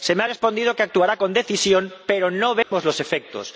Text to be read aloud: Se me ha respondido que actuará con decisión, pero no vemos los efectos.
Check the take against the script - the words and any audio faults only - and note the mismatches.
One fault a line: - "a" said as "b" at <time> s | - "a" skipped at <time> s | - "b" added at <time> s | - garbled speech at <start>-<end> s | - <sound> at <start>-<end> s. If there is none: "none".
- dropout at 2.6-2.7 s